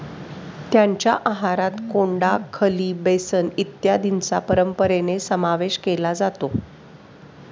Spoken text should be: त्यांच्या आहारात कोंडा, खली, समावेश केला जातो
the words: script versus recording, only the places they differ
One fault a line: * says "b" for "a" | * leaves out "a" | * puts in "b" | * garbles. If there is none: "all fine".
* puts in "बेसन इत्यादींचा परंपरेने"